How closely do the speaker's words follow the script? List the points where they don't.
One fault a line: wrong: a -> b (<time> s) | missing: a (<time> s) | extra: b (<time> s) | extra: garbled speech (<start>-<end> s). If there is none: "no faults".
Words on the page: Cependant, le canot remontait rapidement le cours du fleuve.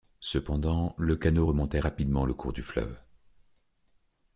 no faults